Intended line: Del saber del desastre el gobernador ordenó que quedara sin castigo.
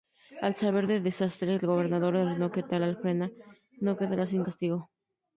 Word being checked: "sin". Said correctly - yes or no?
yes